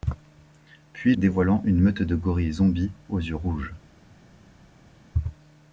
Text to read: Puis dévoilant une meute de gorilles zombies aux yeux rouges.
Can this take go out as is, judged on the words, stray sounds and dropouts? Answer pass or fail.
pass